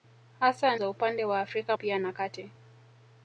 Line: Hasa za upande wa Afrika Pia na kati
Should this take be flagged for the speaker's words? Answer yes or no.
no